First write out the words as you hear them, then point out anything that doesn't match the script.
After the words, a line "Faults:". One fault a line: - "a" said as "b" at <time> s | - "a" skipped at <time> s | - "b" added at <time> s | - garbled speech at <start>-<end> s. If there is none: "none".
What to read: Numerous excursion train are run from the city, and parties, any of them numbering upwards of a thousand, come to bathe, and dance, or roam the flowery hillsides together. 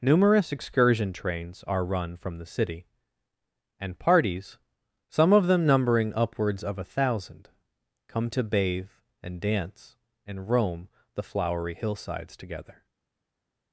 Numerous excursion trains are run from the city, and parties, some of them numbering upwards of a thousand, come to bathe, and dance, and roam the flowery hillsides together.
Faults:
- "train" said as "trains" at 1.1 s
- "any" said as "some" at 5.1 s
- "or" said as "and" at 10.2 s